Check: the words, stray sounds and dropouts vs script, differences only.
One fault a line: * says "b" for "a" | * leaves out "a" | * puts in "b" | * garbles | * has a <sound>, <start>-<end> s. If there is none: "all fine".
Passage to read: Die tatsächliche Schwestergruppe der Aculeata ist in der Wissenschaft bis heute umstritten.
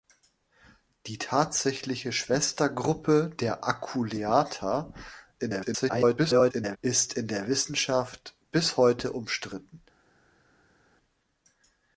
* garbles